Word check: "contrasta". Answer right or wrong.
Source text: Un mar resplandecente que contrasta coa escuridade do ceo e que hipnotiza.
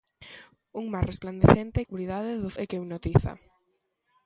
wrong